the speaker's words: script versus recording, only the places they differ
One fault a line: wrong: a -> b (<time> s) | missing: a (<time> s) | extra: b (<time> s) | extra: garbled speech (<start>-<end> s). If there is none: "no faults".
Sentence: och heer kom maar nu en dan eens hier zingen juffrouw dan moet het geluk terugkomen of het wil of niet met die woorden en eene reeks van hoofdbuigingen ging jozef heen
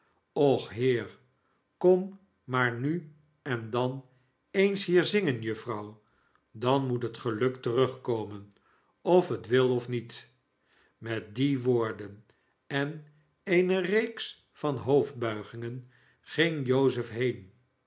no faults